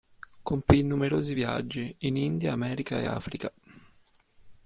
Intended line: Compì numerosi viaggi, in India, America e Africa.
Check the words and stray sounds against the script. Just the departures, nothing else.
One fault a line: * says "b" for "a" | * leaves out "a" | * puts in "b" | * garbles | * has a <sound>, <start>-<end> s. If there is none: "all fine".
all fine